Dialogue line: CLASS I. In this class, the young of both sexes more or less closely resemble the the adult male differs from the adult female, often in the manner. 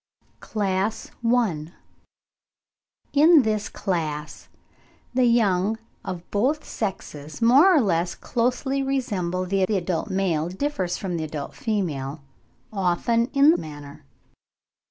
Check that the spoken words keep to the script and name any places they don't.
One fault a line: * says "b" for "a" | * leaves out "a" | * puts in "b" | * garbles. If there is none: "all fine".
all fine